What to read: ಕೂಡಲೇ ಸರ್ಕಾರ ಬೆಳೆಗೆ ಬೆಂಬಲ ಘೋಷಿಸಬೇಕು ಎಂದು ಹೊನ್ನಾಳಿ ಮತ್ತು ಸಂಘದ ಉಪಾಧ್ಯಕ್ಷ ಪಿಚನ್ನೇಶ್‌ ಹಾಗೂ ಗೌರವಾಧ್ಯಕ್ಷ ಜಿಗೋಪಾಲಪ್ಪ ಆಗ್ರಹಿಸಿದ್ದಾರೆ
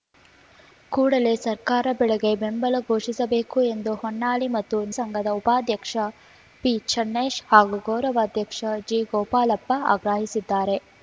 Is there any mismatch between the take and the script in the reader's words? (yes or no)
no